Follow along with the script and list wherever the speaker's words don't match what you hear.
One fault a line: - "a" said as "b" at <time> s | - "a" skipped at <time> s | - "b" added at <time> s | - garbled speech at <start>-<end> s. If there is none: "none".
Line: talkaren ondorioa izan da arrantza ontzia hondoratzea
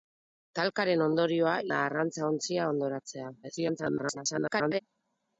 - "izan" skipped at 1.5 s
- garbled speech at 3.4-4.8 s